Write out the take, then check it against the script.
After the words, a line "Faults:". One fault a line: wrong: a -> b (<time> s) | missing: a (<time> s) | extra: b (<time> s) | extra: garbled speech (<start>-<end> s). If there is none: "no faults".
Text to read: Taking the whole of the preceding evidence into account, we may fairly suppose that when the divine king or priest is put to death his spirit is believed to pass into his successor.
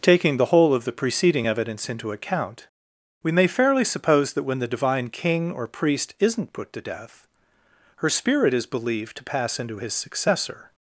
Taking the whole of the preceding evidence into account, we may fairly suppose that when the divine king or priest isn't put to death her spirit is believed to pass into his successor.
Faults:
wrong: is -> isn't (6.2 s)
wrong: his -> her (8.0 s)